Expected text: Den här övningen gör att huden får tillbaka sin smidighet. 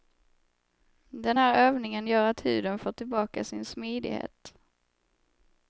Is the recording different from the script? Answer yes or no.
no